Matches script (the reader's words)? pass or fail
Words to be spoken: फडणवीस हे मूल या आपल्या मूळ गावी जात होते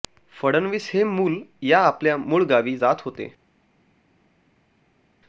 pass